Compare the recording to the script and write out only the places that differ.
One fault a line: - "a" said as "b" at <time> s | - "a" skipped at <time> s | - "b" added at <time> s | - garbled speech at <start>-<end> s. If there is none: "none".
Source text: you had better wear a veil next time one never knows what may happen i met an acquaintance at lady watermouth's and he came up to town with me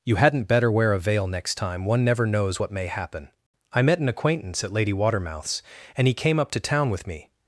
- "had" said as "hadn't" at 0.1 s